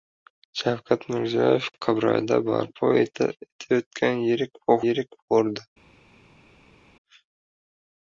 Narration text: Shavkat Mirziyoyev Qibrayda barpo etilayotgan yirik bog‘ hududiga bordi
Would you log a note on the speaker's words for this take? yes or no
yes